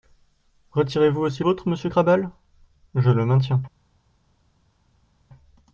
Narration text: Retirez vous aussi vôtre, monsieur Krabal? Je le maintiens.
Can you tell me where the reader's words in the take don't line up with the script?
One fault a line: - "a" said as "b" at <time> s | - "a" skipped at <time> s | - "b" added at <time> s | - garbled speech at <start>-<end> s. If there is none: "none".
none